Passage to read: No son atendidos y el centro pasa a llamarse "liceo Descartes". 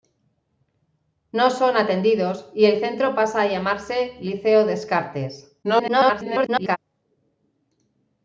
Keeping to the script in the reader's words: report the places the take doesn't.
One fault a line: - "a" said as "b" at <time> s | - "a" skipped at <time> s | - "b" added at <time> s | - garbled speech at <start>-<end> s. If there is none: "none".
- garbled speech at 5.6-6.8 s